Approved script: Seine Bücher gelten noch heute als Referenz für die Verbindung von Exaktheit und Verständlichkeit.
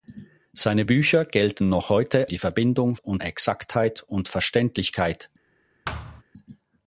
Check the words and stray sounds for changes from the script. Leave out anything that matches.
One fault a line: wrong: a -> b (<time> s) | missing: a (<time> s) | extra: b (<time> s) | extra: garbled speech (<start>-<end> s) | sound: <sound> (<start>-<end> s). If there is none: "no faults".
missing: als Referenz für (2.3 s)
wrong: von -> und (3.0 s)
sound: thud (5.8-6.2 s)